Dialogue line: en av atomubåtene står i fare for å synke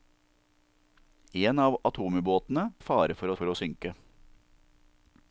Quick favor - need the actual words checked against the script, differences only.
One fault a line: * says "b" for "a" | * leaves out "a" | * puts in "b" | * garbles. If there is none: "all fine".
* leaves out "står"
* puts in "for"